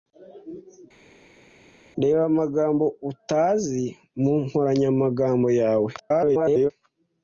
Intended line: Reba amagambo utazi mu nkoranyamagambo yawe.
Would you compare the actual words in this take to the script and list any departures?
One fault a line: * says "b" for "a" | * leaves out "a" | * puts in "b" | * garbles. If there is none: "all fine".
* garbles